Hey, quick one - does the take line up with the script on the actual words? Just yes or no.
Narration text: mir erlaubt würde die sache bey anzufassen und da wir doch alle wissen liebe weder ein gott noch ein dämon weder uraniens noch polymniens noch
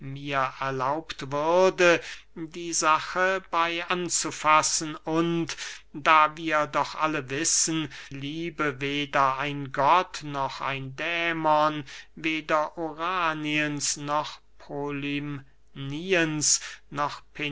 yes